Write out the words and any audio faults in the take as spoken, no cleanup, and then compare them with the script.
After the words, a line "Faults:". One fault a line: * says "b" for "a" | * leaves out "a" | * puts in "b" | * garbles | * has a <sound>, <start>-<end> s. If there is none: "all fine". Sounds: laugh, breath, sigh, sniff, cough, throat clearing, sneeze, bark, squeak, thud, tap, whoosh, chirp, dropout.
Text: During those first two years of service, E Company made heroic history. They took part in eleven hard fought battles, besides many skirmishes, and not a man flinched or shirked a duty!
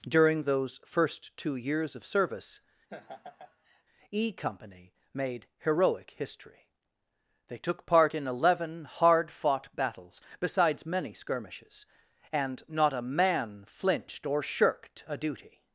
During those first two years of service, E Company made heroic history. They took part in eleven hard fought battles, besides many skirmishes, and not a man flinched or shirked a duty!
Faults:
* has a laugh, 2.9-3.8 s